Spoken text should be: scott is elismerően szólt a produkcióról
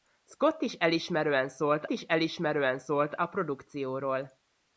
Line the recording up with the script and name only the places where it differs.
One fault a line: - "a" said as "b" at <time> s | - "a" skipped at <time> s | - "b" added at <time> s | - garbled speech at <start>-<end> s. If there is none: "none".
- "is elismerően szólt" added at 1.9 s